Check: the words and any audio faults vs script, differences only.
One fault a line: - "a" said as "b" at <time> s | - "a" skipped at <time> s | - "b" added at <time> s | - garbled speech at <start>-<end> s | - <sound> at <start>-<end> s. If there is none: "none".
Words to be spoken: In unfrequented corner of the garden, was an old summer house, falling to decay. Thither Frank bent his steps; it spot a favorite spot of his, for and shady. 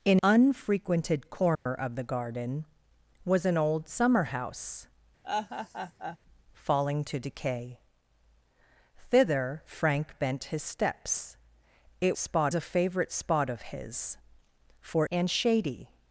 - dropout at 1.6-1.7 s
- laugh at 5.2-6.2 s